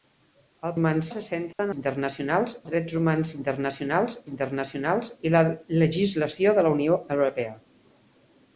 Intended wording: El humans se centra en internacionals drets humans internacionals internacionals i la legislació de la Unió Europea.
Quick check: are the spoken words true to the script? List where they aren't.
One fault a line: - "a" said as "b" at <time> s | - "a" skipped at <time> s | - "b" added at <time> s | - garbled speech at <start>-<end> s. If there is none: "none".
none